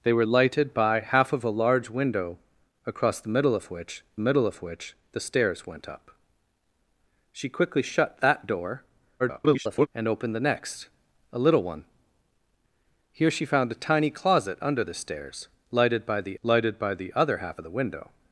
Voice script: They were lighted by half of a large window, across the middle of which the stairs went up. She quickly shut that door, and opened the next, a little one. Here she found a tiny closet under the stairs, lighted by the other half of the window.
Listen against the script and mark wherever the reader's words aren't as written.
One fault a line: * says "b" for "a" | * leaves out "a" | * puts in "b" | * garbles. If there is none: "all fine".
* puts in "middle of which"
* garbles
* puts in "lighted by the"